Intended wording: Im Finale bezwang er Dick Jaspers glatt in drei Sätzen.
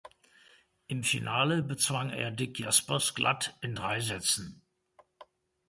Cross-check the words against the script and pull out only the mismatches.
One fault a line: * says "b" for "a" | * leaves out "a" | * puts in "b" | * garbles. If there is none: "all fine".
all fine